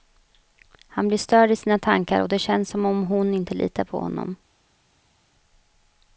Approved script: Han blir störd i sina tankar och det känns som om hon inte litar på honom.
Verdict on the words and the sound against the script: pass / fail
pass